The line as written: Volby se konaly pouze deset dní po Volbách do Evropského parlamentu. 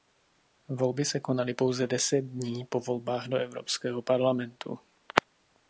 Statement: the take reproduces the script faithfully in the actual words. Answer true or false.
true